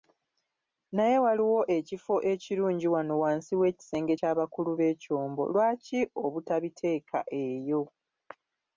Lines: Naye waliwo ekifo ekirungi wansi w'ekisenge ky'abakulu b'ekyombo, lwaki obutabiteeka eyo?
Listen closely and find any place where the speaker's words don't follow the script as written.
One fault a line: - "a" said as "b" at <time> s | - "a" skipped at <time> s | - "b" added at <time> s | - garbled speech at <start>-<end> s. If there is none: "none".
- "wano" added at 2.9 s